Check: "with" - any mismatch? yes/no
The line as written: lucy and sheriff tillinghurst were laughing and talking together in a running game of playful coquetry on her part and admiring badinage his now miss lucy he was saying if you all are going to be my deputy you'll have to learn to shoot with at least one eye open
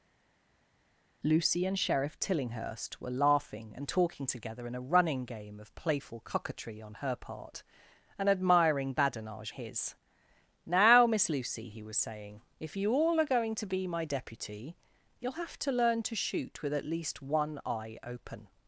no